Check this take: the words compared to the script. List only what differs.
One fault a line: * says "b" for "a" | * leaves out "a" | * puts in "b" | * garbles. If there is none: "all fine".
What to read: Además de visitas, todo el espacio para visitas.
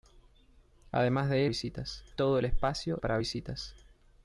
all fine